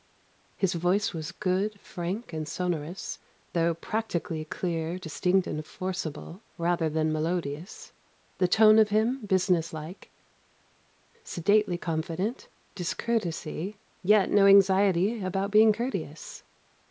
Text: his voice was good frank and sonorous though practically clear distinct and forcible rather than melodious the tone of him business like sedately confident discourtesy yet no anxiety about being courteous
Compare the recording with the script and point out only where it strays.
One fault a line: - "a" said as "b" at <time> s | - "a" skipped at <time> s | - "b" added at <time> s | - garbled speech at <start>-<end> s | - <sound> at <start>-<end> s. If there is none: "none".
none